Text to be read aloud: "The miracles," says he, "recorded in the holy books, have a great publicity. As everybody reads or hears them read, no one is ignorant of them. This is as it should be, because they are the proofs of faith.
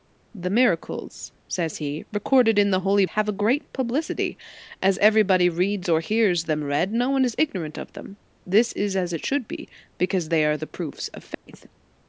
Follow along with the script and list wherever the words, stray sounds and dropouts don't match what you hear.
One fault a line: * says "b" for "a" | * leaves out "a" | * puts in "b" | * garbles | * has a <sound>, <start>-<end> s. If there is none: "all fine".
* leaves out "books"
* has a dropout, 11.3-11.5 s